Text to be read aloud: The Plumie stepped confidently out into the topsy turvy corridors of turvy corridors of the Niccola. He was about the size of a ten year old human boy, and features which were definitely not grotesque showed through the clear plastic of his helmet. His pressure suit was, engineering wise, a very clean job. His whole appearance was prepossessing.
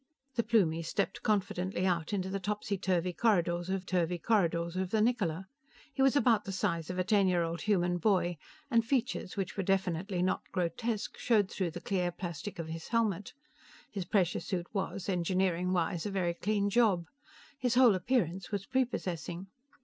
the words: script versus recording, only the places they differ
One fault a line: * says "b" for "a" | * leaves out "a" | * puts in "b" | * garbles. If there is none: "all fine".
all fine